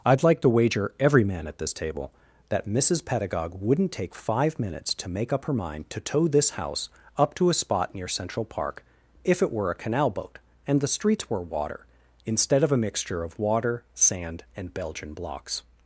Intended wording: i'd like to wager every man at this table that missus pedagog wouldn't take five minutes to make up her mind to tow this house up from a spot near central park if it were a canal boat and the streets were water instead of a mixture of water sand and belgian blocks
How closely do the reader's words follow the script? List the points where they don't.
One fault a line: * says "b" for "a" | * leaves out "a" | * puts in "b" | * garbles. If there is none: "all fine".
* says "to" for "from"